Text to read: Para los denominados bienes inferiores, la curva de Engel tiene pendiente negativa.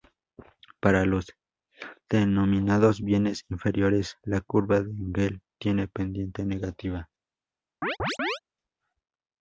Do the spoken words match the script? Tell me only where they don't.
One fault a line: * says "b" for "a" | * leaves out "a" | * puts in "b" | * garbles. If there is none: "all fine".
all fine